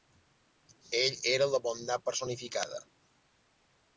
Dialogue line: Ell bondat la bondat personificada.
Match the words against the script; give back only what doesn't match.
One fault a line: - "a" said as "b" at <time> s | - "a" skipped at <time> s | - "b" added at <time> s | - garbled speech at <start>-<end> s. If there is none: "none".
- "bondat" said as "era" at 1.3 s